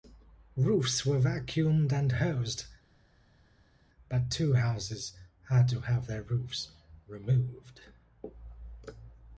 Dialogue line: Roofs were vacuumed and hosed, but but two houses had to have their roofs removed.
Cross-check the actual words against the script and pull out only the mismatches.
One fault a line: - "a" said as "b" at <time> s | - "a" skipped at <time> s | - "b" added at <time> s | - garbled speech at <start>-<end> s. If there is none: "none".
- "but" skipped at 4.3 s